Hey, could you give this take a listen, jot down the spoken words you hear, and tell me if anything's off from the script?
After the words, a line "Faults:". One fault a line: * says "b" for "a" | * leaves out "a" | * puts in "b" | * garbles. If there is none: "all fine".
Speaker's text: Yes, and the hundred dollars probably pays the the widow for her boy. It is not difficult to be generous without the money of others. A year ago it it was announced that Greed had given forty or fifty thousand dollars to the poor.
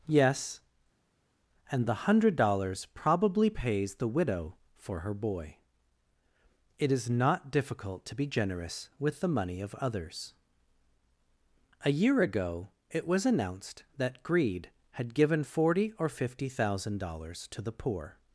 Yes, and the hundred dollars probably pays the widow for her boy. It is not difficult to be generous with the money of others. A year ago it was announced that Greed had given forty or fifty thousand dollars to the poor.
Faults:
* leaves out "the"
* says "with" for "without"
* leaves out "it"